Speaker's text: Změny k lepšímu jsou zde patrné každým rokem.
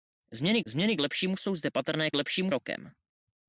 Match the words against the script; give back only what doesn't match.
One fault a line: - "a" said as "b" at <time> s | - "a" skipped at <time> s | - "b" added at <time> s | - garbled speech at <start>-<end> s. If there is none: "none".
- "změny" added at 0.7 s
- "každým" said as "lepšímu" at 2.2 s